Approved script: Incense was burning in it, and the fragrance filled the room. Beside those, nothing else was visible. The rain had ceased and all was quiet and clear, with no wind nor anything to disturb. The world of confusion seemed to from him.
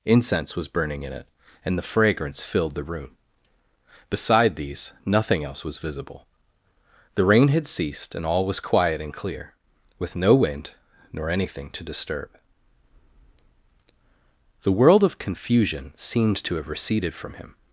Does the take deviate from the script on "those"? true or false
true